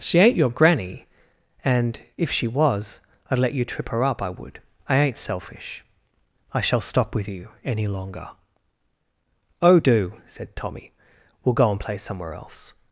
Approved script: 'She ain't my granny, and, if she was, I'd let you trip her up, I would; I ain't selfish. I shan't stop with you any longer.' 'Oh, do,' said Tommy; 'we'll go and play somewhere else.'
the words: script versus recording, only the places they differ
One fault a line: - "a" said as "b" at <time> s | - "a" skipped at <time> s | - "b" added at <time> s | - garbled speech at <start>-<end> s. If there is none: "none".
- "my" said as "your" at 0.3 s
- "shan't" said as "shall" at 6.6 s